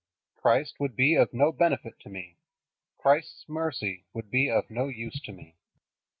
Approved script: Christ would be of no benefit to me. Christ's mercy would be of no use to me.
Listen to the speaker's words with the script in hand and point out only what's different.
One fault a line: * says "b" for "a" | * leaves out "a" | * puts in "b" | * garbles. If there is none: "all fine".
all fine